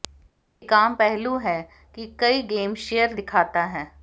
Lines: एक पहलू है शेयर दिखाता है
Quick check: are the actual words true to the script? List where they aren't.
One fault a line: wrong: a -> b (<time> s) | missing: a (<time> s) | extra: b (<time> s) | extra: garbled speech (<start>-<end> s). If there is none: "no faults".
extra: आम (0.7 s)
extra: कि कई गेम (1.9 s)